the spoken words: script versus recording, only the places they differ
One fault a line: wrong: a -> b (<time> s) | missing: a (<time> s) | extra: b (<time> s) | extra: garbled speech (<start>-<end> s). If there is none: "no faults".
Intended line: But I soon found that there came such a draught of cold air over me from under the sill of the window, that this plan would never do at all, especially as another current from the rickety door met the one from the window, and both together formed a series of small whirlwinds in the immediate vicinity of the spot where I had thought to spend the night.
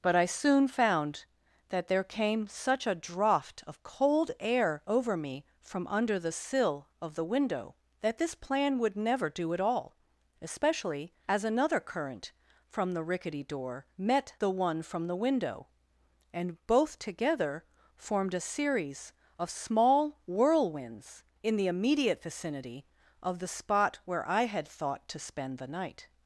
no faults